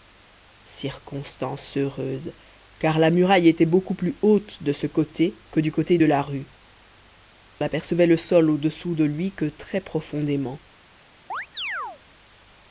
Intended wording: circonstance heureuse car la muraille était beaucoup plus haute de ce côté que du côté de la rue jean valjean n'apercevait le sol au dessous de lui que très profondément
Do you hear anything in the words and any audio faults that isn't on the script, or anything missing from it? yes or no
yes